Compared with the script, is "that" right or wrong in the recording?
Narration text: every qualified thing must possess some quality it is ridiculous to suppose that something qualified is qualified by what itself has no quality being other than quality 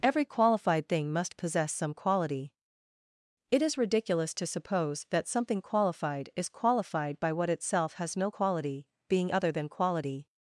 right